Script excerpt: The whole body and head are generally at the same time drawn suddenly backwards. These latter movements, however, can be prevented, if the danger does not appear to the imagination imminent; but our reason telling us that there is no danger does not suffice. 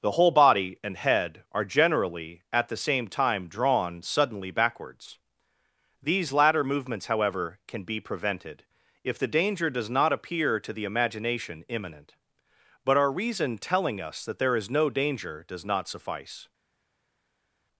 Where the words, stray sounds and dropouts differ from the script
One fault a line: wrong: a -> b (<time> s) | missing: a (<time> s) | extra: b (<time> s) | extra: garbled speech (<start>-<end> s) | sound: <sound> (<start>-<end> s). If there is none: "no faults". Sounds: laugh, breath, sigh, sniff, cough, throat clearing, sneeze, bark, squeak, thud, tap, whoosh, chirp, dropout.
no faults